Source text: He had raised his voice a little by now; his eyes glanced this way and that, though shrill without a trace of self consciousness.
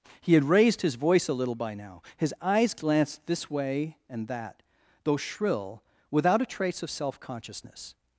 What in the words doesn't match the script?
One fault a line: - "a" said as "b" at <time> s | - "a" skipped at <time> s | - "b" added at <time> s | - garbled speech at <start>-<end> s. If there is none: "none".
none